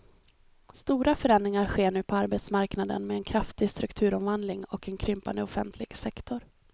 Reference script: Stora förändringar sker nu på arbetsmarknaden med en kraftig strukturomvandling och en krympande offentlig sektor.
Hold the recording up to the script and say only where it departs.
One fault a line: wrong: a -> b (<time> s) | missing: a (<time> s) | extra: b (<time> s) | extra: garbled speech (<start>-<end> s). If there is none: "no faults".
no faults